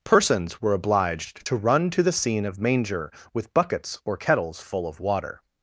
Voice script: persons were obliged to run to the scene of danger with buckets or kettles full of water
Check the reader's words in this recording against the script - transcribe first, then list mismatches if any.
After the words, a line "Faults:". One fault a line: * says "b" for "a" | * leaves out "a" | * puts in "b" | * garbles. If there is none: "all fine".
persons were obliged to run to the scene of manger with buckets or kettles full of water
Faults:
* says "manger" for "danger"